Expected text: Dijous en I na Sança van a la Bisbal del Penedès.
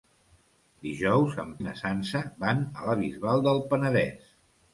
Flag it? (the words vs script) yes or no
no